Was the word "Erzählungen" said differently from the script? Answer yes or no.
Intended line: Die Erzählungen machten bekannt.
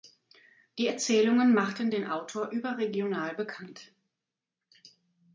no